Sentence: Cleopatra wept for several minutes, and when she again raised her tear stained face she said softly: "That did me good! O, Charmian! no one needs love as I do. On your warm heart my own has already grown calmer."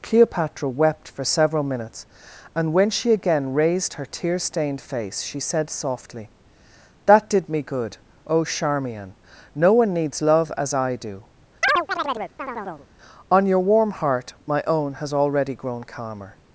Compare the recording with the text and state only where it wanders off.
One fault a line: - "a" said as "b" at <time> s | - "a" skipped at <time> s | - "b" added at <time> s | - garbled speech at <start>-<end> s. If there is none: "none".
none